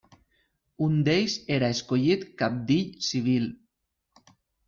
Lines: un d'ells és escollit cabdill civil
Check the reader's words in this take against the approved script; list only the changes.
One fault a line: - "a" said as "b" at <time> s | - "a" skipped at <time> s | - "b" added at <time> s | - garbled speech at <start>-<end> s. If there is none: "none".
- "és" said as "era" at 1.6 s